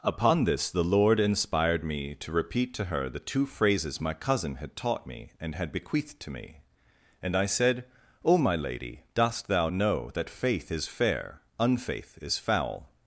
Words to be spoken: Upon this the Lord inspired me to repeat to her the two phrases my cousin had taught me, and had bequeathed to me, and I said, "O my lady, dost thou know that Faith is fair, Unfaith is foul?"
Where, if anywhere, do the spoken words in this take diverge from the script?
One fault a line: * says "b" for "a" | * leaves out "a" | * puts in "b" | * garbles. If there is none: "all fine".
all fine